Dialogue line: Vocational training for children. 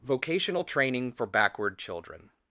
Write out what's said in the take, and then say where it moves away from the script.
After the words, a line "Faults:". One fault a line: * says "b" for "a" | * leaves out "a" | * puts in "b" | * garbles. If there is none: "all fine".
Vocational training for backward children.
Faults:
* puts in "backward"